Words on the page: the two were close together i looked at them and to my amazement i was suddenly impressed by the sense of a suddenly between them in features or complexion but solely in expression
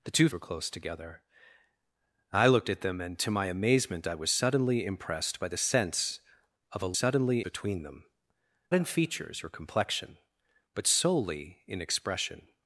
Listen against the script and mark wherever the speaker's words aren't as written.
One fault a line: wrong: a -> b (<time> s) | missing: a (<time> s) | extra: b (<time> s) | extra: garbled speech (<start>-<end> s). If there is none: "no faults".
no faults